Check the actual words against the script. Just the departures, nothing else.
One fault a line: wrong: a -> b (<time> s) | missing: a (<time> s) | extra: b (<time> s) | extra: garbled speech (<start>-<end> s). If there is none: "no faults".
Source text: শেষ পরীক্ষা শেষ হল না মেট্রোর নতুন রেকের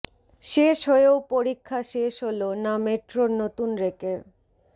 extra: হয়েও (0.9 s)